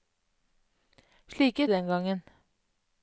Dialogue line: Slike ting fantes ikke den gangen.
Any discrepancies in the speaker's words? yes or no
yes